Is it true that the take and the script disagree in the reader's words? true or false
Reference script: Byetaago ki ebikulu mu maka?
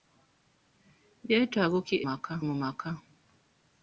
true